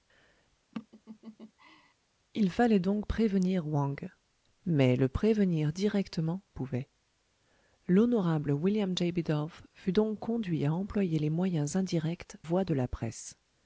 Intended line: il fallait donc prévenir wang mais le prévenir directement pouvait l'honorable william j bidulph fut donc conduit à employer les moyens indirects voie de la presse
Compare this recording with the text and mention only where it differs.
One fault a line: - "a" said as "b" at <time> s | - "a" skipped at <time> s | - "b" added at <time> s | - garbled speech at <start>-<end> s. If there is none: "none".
none